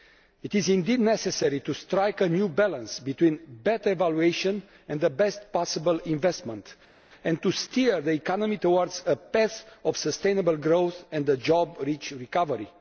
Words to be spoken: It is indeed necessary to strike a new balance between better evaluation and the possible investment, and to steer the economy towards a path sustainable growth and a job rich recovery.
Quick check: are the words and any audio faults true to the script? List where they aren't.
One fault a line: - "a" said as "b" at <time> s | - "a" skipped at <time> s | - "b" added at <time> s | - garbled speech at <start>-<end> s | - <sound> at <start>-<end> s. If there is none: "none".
- "best" added at 5.1 s
- "of" added at 9.8 s